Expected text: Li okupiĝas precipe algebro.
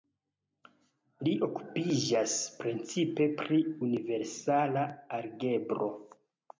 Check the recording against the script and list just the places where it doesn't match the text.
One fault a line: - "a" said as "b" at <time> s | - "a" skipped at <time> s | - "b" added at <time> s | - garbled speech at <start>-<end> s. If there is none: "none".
- "pri universala" added at 3.4 s